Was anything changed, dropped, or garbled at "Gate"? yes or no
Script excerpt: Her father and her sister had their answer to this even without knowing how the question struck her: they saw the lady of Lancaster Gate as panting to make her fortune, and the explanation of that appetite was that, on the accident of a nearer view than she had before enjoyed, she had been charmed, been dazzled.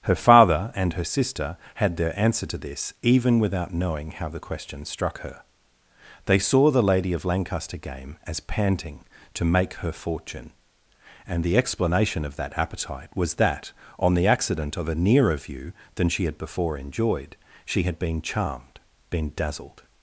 yes